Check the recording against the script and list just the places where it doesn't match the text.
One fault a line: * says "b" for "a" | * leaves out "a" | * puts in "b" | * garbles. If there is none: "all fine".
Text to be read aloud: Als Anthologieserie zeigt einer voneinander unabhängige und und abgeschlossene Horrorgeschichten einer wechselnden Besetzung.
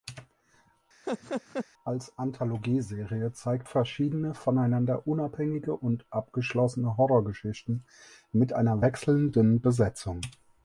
* says "verschiedene" for "einer"
* leaves out "und"
* puts in "mit"